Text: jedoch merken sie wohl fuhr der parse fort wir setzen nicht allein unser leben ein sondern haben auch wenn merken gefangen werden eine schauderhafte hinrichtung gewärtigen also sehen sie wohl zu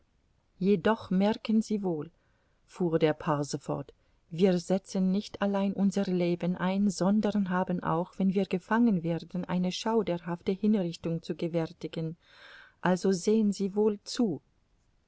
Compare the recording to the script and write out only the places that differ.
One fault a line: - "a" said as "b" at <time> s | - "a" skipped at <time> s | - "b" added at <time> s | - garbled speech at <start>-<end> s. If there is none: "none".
- "merken" said as "wir" at 8.3 s
- "zu" added at 11.2 s